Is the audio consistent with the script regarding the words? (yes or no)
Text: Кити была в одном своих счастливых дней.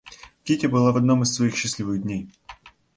no